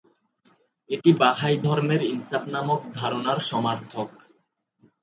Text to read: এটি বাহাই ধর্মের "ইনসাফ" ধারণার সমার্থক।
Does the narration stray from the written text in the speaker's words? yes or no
yes